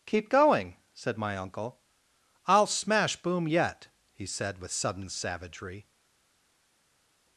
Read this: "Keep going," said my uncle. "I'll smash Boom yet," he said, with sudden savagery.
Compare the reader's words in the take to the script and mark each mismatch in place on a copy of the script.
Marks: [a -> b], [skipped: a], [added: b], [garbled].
"Keep going," said my uncle. "I'll smash Boom yet," he said, with sudden savagery.